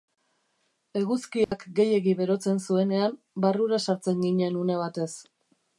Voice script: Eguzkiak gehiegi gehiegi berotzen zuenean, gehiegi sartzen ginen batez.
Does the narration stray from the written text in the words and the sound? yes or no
yes